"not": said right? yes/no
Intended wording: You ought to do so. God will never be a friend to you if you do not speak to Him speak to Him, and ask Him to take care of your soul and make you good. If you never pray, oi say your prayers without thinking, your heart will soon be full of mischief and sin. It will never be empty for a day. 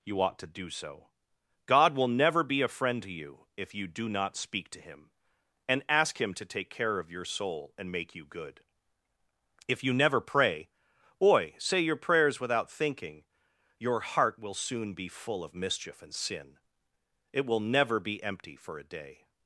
yes